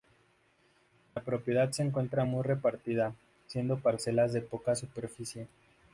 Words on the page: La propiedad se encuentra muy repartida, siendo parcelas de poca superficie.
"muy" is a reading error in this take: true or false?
false